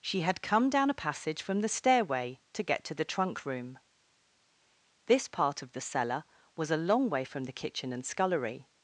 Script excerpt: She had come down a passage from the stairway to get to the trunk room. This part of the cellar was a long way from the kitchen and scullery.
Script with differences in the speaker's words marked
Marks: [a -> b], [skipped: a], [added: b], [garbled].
She had come down a passage from the stairway to get to the trunk room. This part of the cellar was a long way from the kitchen and scullery.